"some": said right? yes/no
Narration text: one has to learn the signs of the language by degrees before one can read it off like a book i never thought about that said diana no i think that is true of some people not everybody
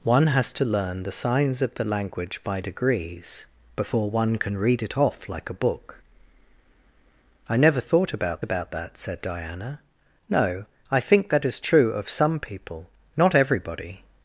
yes